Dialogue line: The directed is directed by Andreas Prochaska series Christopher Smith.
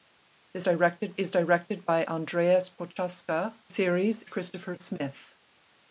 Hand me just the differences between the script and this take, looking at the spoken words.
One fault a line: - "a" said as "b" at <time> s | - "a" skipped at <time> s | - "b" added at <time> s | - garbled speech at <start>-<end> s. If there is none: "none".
none